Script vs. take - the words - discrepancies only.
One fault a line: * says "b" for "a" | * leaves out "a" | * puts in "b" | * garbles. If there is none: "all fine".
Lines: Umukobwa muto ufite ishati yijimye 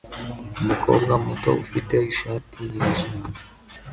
all fine